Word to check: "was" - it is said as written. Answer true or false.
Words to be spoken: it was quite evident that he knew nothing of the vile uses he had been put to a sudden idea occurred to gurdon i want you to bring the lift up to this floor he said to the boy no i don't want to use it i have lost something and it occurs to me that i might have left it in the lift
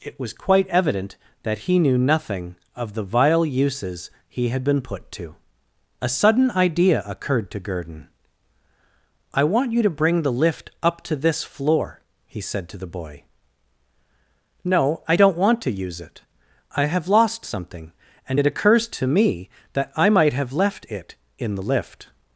true